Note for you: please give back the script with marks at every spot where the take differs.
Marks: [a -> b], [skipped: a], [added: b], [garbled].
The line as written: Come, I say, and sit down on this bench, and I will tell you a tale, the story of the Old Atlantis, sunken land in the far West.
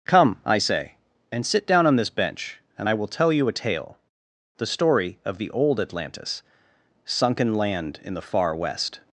Come, I say, and sit down on this bench, and I will tell you a tale, the story of the Old Atlantis, sunken land in the far West.